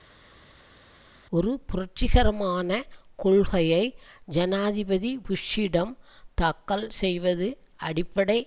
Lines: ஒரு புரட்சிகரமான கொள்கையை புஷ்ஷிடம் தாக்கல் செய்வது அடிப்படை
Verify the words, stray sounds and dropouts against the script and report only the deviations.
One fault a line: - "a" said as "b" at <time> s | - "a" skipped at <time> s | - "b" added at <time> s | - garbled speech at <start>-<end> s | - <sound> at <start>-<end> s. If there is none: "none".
- "ஜனாதிபதி" added at 4.3 s